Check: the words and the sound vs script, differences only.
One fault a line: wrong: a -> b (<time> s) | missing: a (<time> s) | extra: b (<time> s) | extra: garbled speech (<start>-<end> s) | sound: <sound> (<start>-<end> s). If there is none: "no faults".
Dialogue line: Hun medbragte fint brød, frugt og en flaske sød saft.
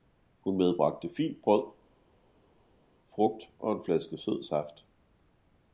no faults